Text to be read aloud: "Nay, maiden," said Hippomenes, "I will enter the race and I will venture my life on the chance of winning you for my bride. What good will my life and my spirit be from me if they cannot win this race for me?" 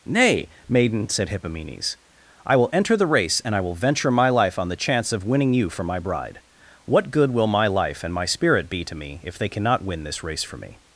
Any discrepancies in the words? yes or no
yes